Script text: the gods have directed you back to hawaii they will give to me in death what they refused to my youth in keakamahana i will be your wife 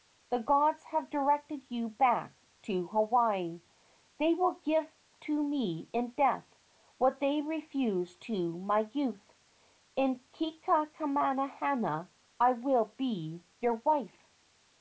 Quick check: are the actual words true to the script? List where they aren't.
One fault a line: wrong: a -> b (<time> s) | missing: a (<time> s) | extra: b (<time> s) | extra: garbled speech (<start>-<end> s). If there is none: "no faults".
no faults